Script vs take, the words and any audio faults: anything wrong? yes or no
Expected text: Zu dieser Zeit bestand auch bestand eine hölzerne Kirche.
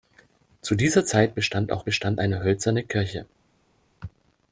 no